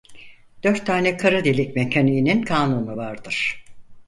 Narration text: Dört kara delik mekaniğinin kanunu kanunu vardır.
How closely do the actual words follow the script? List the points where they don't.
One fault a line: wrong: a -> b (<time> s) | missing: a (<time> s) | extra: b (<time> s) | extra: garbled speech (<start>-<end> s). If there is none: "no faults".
extra: tane (0.8 s)
missing: kanunu (3.0 s)